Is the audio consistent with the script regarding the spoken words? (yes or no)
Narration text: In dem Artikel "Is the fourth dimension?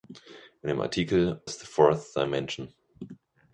yes